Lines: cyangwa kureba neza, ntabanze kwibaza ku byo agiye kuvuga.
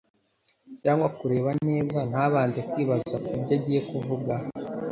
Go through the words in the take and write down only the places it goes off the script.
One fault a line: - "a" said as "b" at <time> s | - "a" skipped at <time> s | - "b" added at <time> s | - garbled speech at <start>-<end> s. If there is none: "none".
none